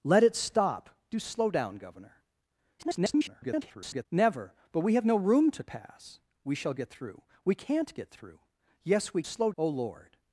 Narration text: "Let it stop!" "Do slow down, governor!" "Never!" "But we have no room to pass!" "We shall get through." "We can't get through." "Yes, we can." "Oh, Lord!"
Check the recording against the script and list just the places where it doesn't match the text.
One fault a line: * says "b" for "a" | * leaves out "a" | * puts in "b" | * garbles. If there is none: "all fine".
* garbles
* says "slow" for "can"